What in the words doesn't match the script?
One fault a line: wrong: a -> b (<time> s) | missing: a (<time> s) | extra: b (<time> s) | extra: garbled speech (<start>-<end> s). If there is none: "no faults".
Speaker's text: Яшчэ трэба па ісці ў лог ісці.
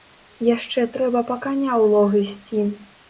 wrong: ісці -> каня (1.4 s)